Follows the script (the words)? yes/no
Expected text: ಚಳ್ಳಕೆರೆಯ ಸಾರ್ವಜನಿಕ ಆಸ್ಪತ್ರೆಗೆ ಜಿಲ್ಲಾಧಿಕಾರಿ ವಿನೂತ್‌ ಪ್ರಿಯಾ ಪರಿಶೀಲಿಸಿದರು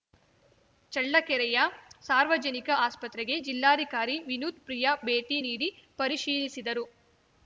no